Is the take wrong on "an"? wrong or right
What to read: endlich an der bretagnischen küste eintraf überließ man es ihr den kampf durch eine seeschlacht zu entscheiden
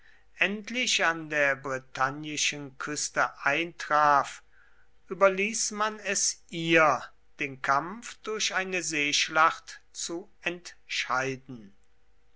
right